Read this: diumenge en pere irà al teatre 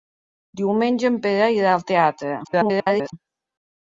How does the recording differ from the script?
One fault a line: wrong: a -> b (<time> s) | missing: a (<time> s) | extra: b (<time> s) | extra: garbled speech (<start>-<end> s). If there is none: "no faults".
extra: garbled speech (2.4-3.1 s)